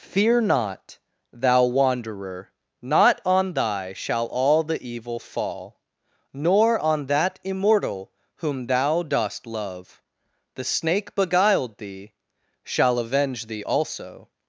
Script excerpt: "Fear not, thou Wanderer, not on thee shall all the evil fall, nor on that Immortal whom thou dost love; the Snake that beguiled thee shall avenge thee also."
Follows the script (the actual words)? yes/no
no